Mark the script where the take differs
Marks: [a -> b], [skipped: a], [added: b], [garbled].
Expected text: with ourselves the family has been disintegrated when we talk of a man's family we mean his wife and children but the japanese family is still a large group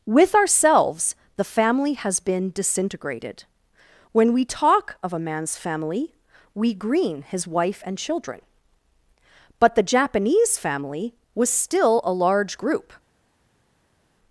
with ourselves the family has been disintegrated when we talk of a man's family we [mean -> green] his wife and children but the japanese family [is -> was] still a large group